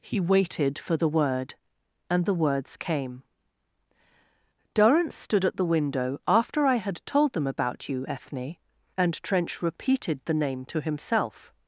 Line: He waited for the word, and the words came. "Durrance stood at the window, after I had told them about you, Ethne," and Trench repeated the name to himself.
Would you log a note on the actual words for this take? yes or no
no